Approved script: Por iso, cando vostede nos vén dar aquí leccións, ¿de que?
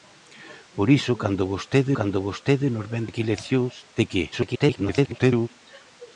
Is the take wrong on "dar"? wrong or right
wrong